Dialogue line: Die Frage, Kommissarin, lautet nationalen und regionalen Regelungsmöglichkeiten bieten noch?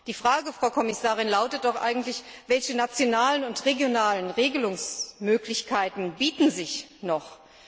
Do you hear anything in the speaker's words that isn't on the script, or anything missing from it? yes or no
yes